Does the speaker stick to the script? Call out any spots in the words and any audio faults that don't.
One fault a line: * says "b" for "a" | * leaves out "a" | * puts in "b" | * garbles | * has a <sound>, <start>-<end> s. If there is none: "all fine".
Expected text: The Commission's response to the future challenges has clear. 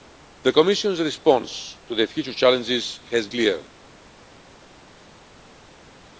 all fine